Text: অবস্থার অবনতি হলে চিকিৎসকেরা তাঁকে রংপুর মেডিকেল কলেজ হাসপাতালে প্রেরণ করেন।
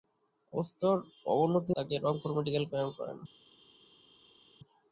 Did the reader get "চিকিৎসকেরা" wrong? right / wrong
wrong